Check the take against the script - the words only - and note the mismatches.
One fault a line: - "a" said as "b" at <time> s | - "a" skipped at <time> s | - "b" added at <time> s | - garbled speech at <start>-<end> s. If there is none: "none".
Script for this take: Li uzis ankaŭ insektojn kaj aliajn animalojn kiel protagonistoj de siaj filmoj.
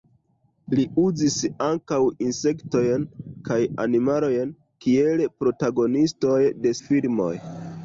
- "aliajn" skipped at 3.6 s
- "siaj" skipped at 6.7 s